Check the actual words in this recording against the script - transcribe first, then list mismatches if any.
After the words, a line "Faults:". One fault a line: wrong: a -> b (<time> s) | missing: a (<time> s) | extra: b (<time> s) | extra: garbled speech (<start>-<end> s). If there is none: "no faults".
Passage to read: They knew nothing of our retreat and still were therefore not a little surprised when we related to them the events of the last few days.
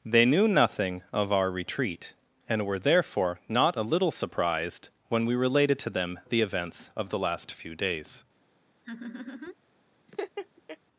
They knew nothing of our retreat and were therefore not a little surprised when we related to them the events of the last few days.
Faults:
missing: still (2.6 s)